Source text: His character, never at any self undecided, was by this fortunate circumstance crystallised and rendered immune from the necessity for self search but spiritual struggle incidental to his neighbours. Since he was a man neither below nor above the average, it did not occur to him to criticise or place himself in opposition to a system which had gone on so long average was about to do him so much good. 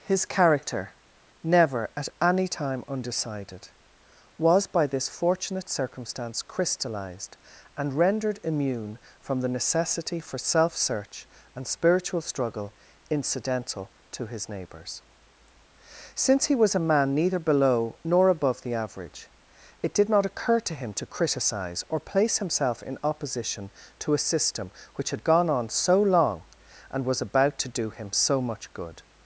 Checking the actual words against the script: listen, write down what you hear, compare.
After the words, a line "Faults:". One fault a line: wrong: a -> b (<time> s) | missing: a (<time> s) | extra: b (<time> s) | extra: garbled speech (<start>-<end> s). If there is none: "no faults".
His character, never at any time undecided, was by this fortunate circumstance crystallised and rendered immune from the necessity for self search and spiritual struggle incidental to his neighbours. Since he was a man neither below nor above the average, it did not occur to him to criticise or place himself in opposition to a system which had gone on so long and was about to do him so much good.
Faults:
wrong: self -> time (2.5 s)
wrong: but -> and (11.5 s)
wrong: average -> and (26.9 s)